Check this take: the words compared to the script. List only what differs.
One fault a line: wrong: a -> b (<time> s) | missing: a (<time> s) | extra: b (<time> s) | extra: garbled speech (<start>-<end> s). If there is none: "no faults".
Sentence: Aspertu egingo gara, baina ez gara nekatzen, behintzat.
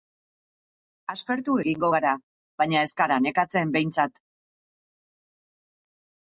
no faults